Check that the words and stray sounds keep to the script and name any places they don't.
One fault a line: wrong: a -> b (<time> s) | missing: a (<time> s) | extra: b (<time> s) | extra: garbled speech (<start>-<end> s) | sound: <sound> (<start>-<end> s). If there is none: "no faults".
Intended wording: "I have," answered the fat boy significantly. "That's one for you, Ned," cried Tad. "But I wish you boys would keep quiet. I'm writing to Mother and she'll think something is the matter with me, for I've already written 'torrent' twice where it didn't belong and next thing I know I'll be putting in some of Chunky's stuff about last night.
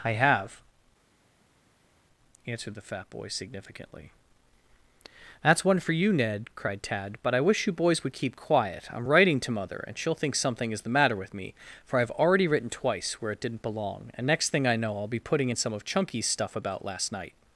missing: torrent (12.7 s)